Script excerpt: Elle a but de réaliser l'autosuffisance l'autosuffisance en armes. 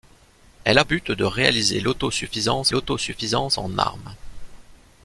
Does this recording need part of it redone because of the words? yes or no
no